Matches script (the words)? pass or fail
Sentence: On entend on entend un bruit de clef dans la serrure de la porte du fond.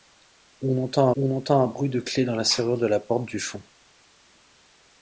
pass